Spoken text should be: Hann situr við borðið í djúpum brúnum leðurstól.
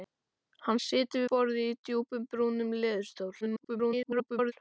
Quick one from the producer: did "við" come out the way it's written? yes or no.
no